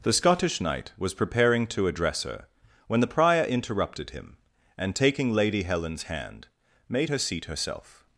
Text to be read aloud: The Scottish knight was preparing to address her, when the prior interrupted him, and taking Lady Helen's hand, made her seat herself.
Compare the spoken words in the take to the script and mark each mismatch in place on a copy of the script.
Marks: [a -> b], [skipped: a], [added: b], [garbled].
The Scottish knight was preparing to address her, when the prior interrupted him, and taking Lady Helen's hand, made her seat herself.